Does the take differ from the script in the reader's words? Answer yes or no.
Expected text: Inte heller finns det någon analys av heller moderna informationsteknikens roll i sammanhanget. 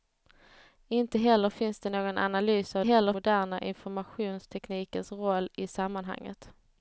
no